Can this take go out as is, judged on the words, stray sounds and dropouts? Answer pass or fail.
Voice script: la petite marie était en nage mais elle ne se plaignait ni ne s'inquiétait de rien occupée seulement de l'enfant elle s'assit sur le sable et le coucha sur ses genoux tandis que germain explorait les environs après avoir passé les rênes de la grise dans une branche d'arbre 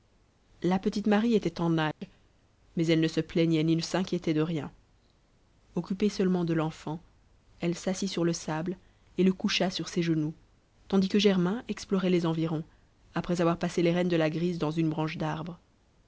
fail